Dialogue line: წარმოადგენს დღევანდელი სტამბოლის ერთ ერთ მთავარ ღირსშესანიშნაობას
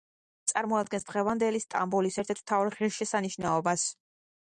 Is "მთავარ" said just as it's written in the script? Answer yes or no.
yes